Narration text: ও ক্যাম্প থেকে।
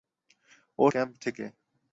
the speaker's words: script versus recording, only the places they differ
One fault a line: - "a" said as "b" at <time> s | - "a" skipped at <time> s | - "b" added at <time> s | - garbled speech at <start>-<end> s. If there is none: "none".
none